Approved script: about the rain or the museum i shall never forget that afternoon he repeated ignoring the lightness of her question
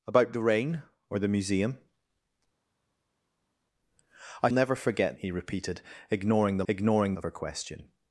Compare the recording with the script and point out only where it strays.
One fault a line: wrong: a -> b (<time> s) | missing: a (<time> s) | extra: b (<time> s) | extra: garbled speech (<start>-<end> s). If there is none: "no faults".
missing: shall (4.5 s)
missing: that afternoon (5.2 s)
wrong: lightness -> ignoring (6.7 s)